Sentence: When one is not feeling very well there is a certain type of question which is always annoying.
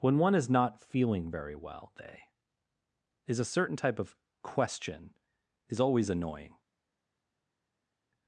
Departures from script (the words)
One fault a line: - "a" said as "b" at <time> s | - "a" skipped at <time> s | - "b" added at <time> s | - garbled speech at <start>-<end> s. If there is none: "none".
- "there" said as "they" at 2.0 s
- "which" skipped at 5.1 s